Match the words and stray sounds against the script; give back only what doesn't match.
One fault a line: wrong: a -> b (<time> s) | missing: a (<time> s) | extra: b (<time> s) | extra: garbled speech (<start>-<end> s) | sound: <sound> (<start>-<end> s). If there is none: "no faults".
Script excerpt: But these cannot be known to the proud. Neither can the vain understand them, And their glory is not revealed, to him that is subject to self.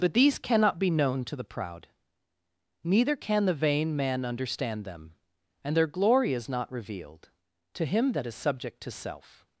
extra: man (4.0 s)